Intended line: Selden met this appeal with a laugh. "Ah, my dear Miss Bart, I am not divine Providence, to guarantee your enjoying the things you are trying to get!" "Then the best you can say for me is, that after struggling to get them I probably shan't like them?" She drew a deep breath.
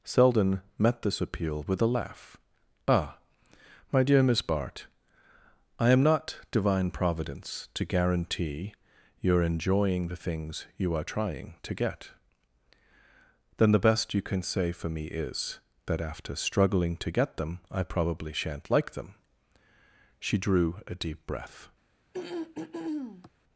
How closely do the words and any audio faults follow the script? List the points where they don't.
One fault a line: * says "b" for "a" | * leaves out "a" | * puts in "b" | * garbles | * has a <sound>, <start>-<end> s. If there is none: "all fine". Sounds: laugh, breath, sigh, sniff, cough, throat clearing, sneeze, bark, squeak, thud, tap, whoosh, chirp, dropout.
* has a throat clearing, 22.1-23.3 s